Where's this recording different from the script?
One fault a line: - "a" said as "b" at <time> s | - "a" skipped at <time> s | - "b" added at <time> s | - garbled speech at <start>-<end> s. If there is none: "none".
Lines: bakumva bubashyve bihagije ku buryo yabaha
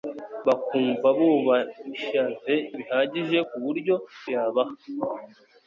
none